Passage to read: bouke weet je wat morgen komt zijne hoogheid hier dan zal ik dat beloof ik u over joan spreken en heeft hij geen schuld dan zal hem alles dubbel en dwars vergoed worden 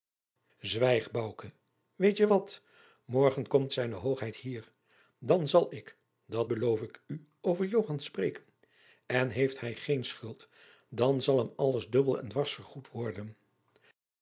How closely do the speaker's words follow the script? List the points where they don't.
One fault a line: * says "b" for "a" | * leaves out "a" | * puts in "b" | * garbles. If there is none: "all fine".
all fine